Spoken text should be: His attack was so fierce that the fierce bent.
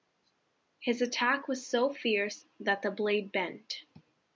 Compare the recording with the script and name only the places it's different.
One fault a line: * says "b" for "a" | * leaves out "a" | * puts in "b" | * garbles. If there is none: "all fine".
* says "blade" for "fierce"